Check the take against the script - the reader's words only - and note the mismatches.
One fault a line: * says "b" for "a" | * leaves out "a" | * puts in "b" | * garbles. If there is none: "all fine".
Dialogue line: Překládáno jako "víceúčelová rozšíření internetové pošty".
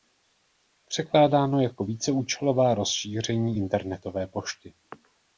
all fine